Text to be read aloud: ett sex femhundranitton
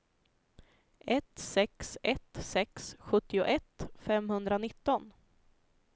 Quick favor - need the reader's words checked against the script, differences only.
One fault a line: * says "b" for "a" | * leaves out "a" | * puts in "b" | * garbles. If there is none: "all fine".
* puts in "ett sex sjuttioett"